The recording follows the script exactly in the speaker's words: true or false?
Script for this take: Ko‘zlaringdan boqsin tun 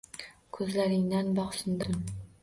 true